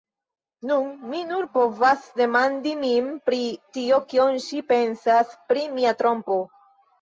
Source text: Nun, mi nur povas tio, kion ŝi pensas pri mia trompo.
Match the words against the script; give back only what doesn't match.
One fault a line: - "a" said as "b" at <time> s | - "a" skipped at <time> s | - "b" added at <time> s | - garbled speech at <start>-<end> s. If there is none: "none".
- "demandi min pri" added at 2.2 s